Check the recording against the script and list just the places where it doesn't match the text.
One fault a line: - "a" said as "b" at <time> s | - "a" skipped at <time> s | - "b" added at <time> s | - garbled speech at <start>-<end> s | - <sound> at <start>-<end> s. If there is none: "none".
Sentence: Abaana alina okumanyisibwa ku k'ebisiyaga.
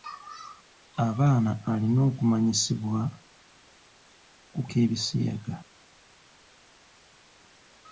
none